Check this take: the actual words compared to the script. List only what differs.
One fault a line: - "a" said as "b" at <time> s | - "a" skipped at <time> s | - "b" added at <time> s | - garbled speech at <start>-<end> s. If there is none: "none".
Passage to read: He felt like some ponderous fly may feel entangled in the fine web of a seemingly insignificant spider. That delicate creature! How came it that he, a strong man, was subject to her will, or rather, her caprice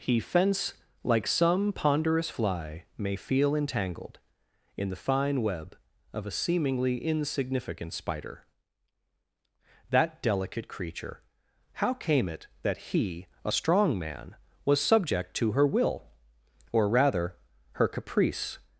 - "felt" said as "fence" at 0.2 s